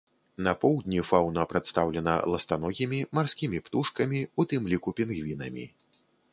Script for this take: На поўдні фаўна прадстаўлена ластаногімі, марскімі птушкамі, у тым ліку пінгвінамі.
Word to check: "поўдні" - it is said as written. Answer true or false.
true